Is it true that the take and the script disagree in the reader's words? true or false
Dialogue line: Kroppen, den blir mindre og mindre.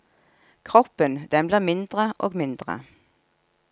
false